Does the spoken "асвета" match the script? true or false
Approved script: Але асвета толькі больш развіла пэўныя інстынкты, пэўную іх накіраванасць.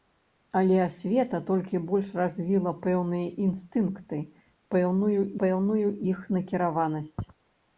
true